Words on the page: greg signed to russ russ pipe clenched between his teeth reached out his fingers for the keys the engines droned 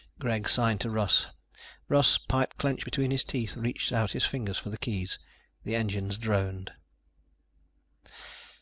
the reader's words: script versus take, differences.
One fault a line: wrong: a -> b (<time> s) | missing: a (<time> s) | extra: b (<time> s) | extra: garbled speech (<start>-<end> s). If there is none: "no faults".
no faults